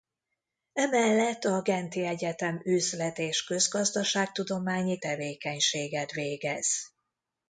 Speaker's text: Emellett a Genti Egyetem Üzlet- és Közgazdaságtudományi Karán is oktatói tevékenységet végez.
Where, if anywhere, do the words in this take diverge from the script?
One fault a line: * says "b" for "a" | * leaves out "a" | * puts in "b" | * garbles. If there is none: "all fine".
* leaves out "Karán is oktatói"